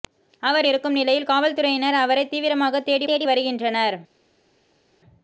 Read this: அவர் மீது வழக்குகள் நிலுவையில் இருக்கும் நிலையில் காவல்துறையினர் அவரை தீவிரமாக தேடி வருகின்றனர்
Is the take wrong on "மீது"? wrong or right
wrong